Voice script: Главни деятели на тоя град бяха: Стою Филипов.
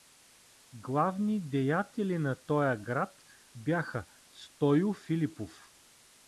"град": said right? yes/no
yes